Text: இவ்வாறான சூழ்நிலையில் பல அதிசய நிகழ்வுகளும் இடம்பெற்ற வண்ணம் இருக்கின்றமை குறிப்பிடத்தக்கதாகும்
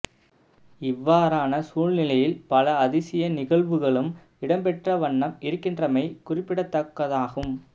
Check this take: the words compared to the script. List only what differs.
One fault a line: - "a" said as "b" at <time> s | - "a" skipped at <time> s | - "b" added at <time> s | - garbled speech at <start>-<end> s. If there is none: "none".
none